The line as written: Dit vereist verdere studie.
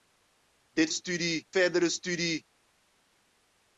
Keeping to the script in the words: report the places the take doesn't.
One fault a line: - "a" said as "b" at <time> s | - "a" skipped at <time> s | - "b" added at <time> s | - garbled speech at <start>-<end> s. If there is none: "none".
- "vereist" said as "studie" at 0.9 s